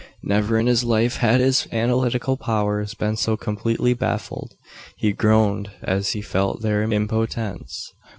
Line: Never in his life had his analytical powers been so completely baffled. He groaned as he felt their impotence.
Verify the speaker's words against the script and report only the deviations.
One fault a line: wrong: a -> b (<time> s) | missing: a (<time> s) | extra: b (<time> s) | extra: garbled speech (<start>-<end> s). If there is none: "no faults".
no faults